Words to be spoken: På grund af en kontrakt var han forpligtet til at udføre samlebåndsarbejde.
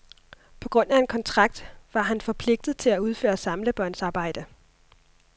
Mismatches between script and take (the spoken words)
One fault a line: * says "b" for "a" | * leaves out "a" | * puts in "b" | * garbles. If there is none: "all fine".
all fine